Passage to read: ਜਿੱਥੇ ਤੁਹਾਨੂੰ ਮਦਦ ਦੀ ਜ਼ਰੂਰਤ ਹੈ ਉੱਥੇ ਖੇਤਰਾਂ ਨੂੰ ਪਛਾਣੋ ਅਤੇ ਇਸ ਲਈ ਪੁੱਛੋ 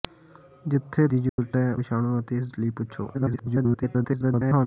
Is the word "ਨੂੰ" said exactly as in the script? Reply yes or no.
no